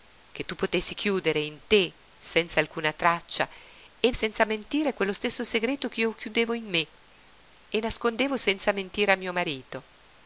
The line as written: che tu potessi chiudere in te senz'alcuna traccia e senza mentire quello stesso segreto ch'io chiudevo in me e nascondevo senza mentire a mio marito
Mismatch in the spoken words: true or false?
false